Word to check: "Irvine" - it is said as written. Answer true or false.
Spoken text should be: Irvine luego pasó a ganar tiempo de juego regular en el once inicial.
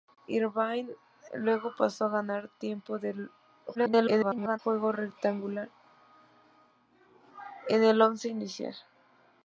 true